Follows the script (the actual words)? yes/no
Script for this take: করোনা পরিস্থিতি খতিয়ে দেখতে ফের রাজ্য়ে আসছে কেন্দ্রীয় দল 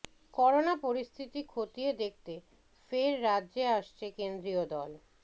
yes